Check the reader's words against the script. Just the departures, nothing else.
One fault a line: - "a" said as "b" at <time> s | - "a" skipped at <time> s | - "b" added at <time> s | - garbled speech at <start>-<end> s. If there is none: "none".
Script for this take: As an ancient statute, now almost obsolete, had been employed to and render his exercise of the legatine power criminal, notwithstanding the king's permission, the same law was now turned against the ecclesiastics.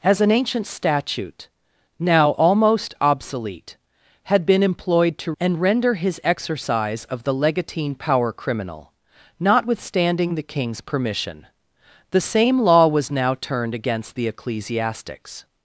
none